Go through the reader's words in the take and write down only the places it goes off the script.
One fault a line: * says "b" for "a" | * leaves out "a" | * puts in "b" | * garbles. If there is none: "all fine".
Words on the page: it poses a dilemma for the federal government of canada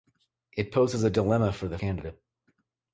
* leaves out "federal government of"